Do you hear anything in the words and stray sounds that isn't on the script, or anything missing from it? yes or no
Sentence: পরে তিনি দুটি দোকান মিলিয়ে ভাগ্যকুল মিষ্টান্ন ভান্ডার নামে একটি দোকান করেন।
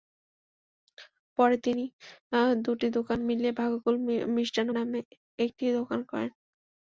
yes